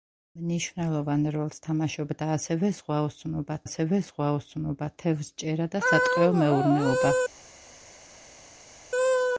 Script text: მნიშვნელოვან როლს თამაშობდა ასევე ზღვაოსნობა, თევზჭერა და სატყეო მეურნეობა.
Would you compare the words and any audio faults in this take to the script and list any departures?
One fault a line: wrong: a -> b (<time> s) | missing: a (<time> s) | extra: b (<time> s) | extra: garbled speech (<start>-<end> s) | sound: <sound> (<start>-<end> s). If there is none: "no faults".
extra: ასევე ზღვაოსნობა (3.7 s)